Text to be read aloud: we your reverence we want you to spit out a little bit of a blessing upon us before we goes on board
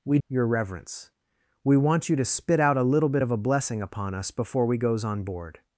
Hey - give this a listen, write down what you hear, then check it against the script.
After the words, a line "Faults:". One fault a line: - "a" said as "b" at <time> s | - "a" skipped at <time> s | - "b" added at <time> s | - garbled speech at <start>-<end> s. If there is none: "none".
we your reverence we want you to spit out a little bit of a blessing upon us before we goes on board
Faults:
none